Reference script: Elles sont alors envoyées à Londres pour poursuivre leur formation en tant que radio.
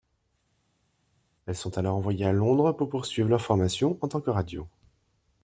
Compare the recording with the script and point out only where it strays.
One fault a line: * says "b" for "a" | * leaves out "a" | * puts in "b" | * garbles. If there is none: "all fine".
all fine